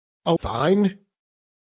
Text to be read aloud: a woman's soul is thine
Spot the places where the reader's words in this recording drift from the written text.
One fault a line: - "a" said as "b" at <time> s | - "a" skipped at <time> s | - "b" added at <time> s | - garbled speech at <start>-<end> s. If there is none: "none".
- "woman's soul is" skipped at 0.3 s